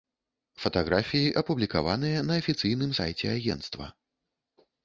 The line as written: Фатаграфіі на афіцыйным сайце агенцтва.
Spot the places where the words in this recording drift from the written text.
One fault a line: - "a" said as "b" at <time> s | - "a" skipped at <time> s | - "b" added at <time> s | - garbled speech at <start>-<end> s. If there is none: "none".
- "апублікаваныя" added at 1.4 s